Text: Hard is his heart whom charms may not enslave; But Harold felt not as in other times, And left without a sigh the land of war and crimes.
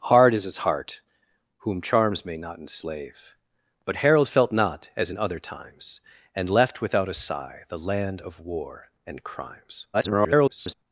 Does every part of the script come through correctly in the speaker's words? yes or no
no